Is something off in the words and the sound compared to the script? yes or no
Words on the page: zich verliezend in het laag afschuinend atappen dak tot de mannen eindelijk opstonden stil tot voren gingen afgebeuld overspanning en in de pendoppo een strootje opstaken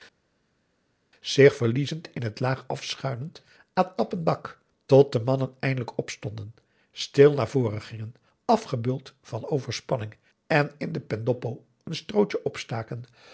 yes